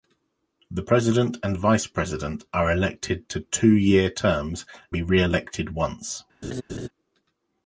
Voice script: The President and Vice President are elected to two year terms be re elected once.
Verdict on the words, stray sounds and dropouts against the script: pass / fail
fail